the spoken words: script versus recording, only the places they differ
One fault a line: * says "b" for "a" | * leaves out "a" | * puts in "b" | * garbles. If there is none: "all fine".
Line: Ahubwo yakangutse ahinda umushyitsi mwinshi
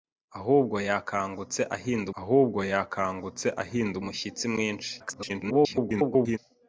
* puts in "ahubwo yakangutse ahinda"
* garbles